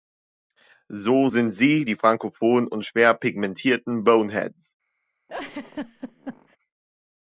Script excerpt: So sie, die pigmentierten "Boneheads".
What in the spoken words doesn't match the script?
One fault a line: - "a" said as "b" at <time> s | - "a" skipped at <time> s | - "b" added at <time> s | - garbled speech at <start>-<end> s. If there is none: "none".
- "sind" added at 1.2 s
- "frankophonen und schwer" added at 1.9 s